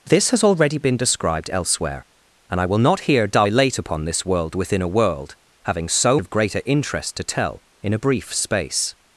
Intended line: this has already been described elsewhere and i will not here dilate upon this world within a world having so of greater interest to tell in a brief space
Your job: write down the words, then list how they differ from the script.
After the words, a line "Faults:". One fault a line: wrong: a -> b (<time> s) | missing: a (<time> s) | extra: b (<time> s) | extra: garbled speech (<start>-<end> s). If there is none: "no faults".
this has already been described elsewhere and i will not here dilate upon this world within a world having so of greater interest to tell in a brief space
Faults:
no faults